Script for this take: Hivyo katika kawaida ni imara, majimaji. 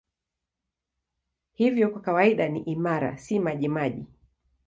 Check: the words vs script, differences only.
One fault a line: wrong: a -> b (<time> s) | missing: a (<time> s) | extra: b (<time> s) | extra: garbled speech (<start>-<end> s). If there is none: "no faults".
wrong: katika -> kwa (1.9 s)
extra: si (3.2 s)